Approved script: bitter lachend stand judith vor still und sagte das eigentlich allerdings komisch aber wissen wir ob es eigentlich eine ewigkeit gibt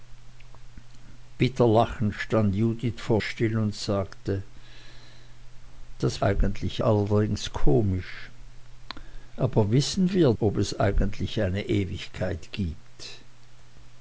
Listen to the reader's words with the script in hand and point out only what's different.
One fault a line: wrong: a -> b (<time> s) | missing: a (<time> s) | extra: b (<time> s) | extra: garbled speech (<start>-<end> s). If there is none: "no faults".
no faults